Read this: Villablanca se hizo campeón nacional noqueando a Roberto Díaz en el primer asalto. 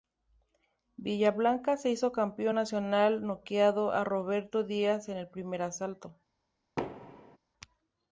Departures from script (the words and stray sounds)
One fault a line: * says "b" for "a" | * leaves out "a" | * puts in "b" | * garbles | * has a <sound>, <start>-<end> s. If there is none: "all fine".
* has a thud, 6.8-7.4 s